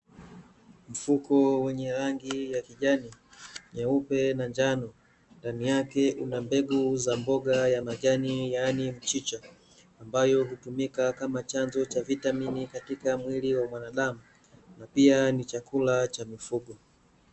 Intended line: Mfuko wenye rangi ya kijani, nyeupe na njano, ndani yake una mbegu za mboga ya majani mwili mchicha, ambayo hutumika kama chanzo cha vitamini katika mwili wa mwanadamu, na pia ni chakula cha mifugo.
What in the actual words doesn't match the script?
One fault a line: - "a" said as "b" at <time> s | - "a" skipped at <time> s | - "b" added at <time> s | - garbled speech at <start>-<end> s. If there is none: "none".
- "mwili" said as "yaani" at 8.5 s